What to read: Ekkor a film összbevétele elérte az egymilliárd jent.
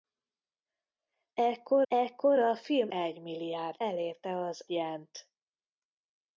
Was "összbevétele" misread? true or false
true